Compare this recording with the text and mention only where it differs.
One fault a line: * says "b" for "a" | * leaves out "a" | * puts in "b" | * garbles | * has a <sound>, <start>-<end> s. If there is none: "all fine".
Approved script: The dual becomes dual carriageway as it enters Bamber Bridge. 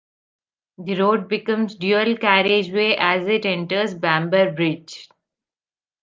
* says "road" for "dual"